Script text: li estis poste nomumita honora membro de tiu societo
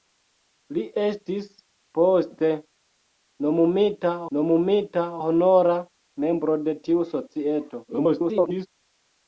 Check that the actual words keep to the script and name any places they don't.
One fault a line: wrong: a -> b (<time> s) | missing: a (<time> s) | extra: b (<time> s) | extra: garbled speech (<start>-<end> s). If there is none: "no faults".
extra: nomumita (4.4 s)
extra: garbled speech (7.9-8.7 s)